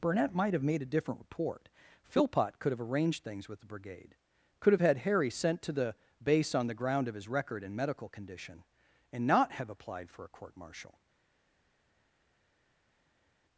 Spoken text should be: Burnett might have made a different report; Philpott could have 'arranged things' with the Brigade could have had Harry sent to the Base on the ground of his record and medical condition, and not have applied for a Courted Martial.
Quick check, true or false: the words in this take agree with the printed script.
false